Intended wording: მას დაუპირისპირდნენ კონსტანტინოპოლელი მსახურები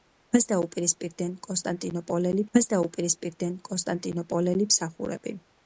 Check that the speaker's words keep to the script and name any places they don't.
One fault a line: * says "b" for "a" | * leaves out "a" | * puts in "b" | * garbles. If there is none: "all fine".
* puts in "მას დაუპირისპირდნენ კონსტანტინოპოლელი"